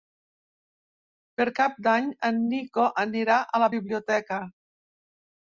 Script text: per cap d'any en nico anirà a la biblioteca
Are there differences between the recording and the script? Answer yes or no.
no